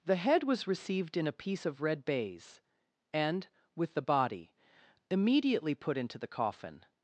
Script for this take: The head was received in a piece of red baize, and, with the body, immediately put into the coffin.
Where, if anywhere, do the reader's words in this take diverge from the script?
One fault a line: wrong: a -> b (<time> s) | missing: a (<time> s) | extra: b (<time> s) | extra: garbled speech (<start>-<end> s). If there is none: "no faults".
no faults